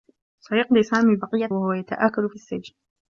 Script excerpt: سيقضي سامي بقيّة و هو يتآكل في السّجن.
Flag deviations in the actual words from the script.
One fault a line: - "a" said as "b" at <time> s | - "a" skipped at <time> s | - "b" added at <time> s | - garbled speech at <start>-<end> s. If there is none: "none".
none